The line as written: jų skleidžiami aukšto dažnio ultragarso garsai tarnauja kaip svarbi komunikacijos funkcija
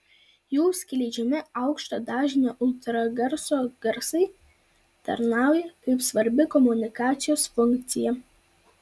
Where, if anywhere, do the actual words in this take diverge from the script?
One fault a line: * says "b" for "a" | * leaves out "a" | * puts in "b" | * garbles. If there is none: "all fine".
all fine